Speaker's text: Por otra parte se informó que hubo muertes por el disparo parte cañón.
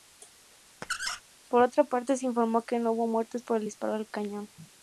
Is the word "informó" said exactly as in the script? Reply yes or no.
yes